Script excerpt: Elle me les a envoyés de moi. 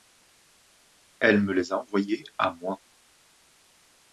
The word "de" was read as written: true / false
false